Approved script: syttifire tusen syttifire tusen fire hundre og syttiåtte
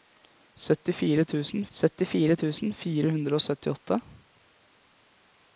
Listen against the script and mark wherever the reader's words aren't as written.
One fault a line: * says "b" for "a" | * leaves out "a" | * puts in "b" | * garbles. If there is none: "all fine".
all fine